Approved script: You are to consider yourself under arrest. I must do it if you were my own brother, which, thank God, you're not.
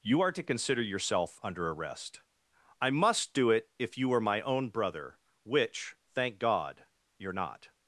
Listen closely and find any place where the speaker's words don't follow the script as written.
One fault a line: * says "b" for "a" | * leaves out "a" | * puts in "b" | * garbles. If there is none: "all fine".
all fine